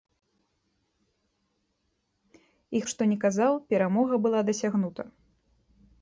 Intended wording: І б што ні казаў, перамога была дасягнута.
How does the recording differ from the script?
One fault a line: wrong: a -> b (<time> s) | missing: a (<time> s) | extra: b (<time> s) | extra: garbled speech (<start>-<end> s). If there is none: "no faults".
no faults